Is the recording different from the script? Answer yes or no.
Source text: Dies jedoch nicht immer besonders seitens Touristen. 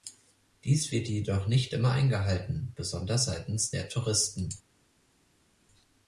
yes